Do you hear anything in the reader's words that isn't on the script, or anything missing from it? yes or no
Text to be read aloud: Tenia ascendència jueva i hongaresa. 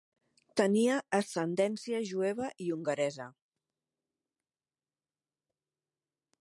no